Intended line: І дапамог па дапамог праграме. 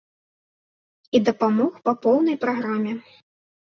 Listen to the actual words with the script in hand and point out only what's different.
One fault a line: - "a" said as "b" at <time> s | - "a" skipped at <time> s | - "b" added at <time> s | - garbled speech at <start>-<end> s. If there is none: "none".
- "дапамог" said as "поўнай" at 2.1 s